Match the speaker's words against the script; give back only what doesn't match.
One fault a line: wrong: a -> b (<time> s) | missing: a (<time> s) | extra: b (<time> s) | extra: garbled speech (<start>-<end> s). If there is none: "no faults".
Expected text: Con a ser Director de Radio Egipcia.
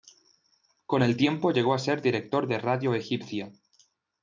extra: el tiempo llegó (1.0 s)